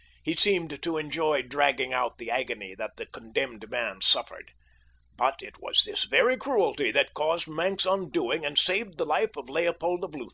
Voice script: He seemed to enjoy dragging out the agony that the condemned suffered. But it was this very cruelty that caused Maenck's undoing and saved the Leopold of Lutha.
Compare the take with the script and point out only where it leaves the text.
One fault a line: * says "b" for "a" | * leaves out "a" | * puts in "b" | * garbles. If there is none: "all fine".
* puts in "man"
* puts in "life of"